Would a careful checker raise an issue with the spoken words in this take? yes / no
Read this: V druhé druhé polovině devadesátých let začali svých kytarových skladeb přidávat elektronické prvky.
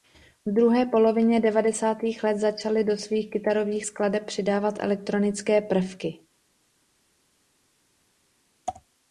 yes